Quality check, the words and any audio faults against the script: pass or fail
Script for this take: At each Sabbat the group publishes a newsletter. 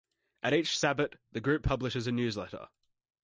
pass